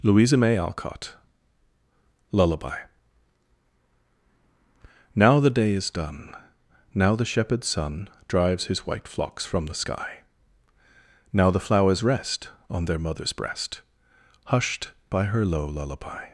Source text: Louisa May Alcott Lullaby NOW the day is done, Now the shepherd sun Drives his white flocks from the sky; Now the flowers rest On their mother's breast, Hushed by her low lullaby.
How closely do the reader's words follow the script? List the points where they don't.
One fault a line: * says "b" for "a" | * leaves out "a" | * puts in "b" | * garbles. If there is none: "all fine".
all fine